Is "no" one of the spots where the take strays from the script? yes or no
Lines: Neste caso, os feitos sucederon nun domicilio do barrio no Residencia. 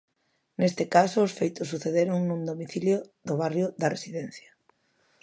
yes